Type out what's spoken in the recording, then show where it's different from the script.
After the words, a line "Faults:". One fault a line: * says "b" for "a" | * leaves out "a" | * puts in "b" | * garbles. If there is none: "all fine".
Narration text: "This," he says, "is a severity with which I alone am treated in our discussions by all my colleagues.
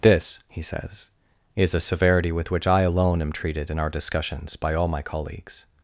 "This," he says, "is a severity with which I alone am treated in our discussions by all my colleagues.
Faults:
all fine